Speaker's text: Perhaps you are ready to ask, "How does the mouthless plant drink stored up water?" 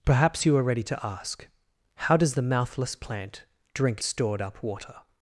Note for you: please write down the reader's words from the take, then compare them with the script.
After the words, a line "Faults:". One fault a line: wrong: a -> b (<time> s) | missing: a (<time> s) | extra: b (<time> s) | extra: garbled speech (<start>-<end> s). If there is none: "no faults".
Perhaps you are ready to ask, "How does the mouthless plant drink stored up water?"
Faults:
no faults